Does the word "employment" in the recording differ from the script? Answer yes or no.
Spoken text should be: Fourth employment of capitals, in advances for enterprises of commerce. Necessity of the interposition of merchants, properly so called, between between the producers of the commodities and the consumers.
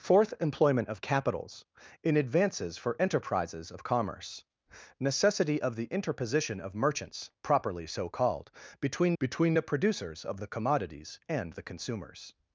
no